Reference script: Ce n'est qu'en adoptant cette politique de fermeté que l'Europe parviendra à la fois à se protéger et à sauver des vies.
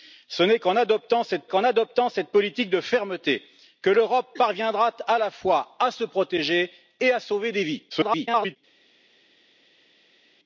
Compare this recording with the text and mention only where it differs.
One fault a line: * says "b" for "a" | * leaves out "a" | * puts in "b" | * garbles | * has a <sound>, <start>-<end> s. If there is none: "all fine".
* puts in "qu'en adoptant cette"
* garbles